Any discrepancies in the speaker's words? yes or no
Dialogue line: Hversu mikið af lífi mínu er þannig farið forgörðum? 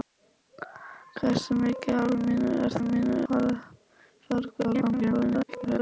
yes